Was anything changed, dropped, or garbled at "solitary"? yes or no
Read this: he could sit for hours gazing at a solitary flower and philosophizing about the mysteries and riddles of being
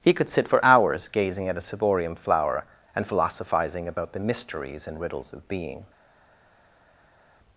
yes